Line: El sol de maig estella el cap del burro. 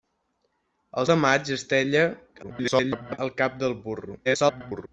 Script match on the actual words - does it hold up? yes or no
no